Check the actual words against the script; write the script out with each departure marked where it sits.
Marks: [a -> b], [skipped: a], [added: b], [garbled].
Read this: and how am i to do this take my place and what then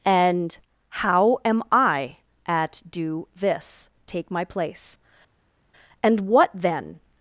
and how am i [to -> at] do this take my place and what then